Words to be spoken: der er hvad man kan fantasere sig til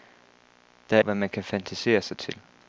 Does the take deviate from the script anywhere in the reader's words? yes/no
no